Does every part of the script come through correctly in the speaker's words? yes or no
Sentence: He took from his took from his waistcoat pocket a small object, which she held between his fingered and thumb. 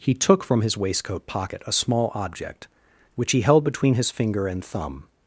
no